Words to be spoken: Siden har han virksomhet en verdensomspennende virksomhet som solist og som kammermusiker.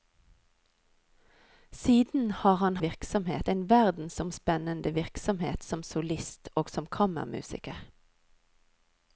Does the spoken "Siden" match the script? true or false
true